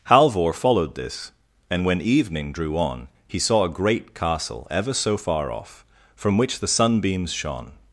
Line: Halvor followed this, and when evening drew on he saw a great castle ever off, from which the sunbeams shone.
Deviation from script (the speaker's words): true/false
true